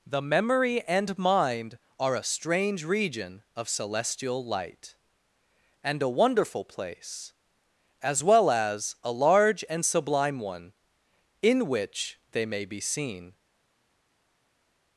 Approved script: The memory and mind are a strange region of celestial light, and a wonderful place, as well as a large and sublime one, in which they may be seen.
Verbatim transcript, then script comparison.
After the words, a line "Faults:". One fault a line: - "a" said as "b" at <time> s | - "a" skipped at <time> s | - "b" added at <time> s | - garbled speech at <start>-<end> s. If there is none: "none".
The memory and mind are a strange region of celestial light, and a wonderful place, as well as a large and sublime one, in which they may be seen.
Faults:
none